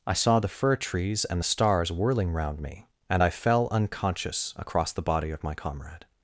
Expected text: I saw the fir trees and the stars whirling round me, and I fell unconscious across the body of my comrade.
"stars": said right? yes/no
yes